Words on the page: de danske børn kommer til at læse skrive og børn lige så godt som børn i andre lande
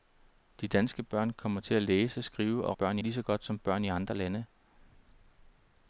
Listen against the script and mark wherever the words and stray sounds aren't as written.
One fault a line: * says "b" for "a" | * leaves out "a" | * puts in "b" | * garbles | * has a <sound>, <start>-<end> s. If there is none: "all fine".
all fine